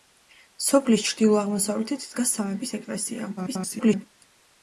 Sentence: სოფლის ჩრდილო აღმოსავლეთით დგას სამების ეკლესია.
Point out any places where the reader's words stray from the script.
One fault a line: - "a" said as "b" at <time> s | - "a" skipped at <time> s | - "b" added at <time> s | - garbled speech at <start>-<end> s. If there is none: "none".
- garbled speech at 3.4-4.0 s